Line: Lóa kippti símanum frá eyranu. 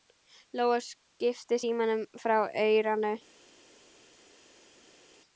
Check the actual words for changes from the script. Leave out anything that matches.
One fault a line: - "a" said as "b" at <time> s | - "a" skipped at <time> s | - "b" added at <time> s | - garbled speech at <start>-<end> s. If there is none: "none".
none